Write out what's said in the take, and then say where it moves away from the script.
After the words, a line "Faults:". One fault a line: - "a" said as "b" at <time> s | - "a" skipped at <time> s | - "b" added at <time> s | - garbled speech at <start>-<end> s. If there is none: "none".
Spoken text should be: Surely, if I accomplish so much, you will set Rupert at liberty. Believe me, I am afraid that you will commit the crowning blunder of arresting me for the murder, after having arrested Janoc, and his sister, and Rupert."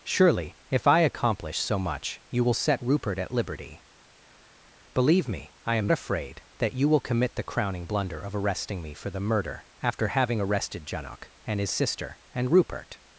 Surely, if I accomplish so much, you will set Rupert at liberty. Believe me, I am afraid that you will commit the crowning blunder of arresting me for the murder, after having arrested Janoc, and his sister, and Rupert."
Faults:
none